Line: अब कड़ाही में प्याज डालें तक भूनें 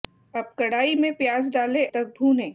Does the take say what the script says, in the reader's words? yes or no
yes